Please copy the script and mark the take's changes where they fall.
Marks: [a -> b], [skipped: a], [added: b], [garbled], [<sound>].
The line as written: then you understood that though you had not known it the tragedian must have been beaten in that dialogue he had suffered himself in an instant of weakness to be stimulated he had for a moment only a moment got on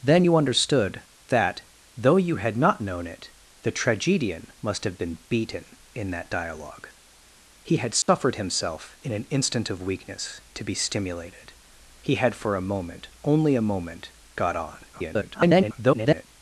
then you understood that though you had not known it the tragedian must have been beaten in that dialogue he had suffered [dropout] himself in an instant of weakness to be stimulated he had for a moment only a moment got on [garbled]